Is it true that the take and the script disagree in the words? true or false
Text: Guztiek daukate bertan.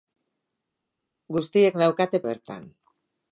false